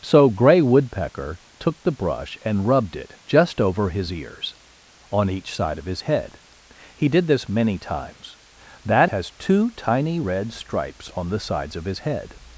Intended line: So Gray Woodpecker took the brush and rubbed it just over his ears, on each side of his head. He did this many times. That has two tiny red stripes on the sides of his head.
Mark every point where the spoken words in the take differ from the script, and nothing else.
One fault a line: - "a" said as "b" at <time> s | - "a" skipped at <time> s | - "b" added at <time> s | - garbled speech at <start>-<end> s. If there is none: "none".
none